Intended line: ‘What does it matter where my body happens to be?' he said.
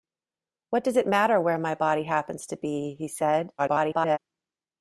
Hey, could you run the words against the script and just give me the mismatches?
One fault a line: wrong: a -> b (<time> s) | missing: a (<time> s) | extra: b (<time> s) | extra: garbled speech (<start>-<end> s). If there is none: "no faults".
extra: garbled speech (3.6-4.2 s)